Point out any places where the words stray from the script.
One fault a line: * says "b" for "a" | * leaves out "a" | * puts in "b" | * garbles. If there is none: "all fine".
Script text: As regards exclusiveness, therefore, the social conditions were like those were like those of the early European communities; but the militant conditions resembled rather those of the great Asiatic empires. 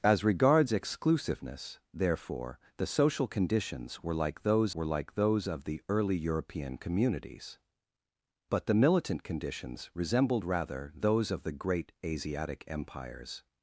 all fine